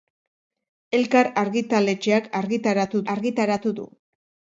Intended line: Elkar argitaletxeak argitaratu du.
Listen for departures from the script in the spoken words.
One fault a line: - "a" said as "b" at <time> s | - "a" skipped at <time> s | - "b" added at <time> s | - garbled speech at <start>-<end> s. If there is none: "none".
- "argitaratu" added at 3.1 s